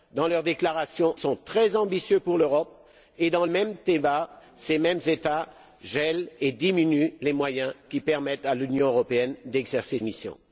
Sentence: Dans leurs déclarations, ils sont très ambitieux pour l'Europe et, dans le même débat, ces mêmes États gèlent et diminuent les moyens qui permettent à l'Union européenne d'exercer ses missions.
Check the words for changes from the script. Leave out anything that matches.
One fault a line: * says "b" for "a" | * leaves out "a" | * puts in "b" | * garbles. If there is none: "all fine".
* leaves out "ils"
* leaves out "le"
* leaves out "ses"